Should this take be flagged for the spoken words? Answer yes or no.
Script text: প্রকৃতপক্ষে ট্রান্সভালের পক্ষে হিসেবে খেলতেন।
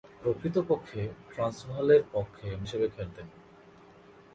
no